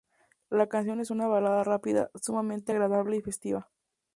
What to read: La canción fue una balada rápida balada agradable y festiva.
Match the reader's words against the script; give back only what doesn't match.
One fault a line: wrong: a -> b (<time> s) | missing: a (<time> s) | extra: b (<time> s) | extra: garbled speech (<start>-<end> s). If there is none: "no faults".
wrong: fue -> es (1.0 s)
wrong: balada -> sumamente (2.1 s)